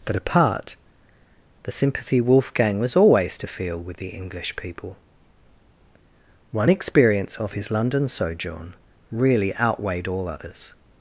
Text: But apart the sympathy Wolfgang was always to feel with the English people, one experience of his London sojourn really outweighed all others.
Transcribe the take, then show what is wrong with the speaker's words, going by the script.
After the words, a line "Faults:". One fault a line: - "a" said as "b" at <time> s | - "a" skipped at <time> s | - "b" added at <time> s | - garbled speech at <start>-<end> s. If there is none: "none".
But apart the sympathy Wolfgang was always to feel with the English people, one experience of his London sojourn really outweighed all others.
Faults:
none